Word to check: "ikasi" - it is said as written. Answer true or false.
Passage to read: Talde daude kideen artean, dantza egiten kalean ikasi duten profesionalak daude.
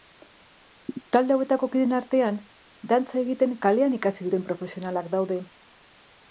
true